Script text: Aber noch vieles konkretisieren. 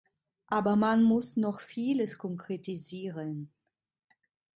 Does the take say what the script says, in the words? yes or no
no